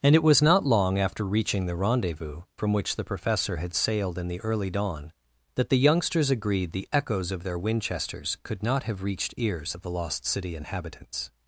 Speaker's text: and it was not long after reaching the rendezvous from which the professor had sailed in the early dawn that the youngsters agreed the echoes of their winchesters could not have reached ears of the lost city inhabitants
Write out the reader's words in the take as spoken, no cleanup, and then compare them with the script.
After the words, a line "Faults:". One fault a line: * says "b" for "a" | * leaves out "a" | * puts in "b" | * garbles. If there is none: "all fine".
and it was not long after reaching the rendezvous from which the professor had sailed in the early dawn that the youngsters agreed the echoes of their winchesters could not have reached ears of the lost city inhabitants
Faults:
all fine